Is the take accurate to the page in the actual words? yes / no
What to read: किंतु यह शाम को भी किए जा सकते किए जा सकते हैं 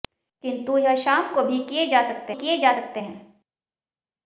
yes